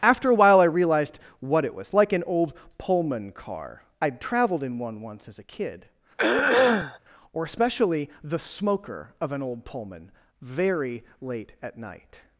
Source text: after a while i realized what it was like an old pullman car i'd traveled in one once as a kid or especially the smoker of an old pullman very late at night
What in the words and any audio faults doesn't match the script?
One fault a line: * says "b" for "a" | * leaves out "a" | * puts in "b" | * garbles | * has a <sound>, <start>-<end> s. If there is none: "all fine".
* has a throat clearing, 6.2-7.0 s